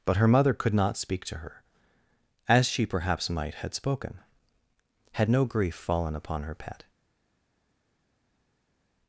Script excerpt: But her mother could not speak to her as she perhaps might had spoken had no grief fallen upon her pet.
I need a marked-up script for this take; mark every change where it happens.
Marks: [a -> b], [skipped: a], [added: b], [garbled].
But her mother could not speak to her as she perhaps might had spoken had no grief fallen upon her pet.